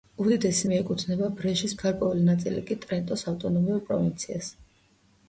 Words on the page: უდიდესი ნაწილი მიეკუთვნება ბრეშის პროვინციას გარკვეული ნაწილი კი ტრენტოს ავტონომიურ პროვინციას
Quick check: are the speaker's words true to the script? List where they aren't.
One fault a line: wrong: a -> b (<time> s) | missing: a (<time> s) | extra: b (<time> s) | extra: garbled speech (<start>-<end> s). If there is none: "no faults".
missing: ნაწილი (0.7 s)
missing: პროვინციას (1.7 s)